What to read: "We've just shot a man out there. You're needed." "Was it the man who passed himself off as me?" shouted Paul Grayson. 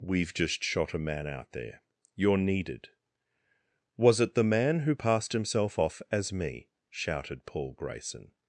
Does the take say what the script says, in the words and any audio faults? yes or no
yes